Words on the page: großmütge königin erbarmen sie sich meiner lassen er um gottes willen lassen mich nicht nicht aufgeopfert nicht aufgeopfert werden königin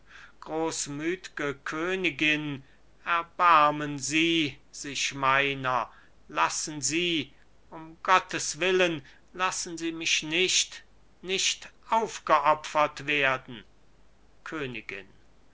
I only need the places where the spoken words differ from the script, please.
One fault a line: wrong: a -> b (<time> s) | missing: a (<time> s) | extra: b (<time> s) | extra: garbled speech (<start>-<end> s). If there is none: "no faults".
wrong: er -> sie (6.8 s)
extra: sie (9.7 s)
missing: nicht aufgeopfert (13.1 s)